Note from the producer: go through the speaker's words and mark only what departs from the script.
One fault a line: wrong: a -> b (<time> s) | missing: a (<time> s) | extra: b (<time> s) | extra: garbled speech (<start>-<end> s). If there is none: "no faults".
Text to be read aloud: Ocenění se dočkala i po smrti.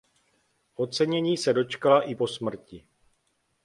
no faults